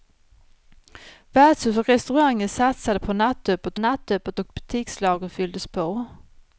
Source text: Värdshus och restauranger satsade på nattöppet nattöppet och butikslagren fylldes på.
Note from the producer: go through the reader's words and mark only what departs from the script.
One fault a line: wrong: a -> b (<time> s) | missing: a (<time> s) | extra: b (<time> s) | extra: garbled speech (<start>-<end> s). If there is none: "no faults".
no faults